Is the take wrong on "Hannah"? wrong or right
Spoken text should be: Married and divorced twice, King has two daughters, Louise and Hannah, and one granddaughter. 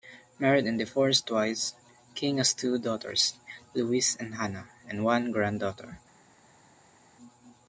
right